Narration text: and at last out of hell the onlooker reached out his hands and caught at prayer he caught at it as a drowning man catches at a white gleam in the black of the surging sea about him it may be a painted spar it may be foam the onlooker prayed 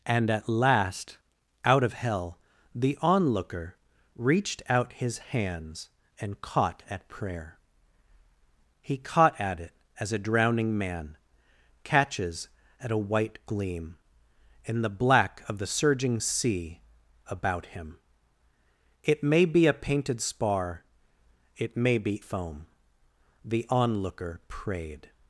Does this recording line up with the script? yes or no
yes